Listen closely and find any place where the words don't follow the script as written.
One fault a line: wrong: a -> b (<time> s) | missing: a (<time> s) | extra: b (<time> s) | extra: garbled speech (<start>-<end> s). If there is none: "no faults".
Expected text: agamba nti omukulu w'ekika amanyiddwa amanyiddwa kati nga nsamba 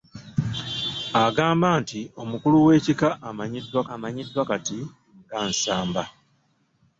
no faults